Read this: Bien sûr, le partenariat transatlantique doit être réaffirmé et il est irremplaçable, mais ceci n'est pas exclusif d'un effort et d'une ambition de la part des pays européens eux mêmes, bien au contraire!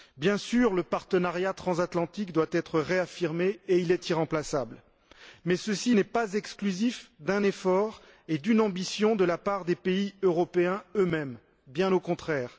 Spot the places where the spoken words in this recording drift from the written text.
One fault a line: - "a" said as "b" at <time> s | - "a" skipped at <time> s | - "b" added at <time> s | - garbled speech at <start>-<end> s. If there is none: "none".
none